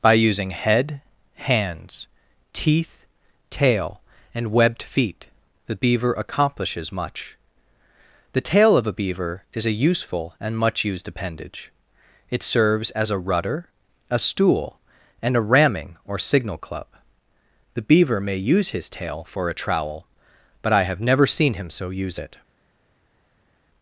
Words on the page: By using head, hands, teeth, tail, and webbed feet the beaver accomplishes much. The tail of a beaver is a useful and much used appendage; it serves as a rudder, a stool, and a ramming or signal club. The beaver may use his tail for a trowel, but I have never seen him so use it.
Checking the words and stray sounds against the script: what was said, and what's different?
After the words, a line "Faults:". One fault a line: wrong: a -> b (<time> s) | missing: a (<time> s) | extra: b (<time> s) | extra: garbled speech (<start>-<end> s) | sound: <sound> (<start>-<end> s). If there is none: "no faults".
By using head, hands, teeth, tail, and webbed feet the beaver accomplishes much. The tail of a beaver is a useful and much used appendage; it serves as a rudder, a stool, and a ramming or signal club. The beaver may use his tail for a trowel, but I have never seen him so use it.
Faults:
no faults